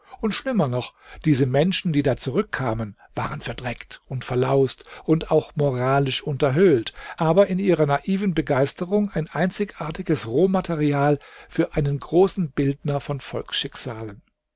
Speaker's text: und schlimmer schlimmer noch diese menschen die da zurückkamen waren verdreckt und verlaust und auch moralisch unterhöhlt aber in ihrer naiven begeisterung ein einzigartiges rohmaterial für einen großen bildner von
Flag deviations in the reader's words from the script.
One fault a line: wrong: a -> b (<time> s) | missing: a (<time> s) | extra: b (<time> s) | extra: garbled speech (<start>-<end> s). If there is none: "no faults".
missing: schlimmer (0.7 s)